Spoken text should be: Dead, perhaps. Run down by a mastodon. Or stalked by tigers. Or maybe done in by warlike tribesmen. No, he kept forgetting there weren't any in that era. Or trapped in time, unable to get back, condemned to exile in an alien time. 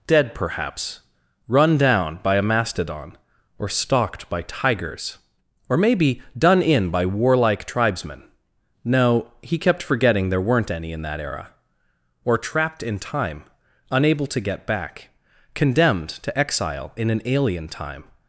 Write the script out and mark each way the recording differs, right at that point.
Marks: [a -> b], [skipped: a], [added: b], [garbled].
Dead, perhaps. Run down by a mastodon. Or stalked by tigers. Or maybe done in by warlike tribesmen. No, he kept forgetting there weren't any in that era. Or trapped in time, unable to get back, condemned to exile in an alien time.